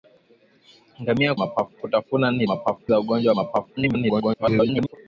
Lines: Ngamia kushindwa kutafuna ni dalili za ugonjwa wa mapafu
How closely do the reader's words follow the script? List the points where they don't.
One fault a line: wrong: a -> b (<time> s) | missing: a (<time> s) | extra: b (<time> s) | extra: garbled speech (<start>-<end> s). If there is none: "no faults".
wrong: kushindwa -> mapafu (1.4 s)
wrong: dalili -> mapafu (2.5 s)
extra: garbled speech (3.8-5.0 s)